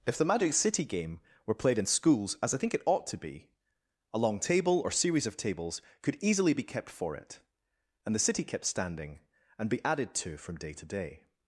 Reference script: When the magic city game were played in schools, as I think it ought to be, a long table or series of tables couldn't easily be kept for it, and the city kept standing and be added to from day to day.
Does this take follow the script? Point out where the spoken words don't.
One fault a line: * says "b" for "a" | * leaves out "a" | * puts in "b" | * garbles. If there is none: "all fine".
* says "If" for "When"
* says "could" for "couldn't"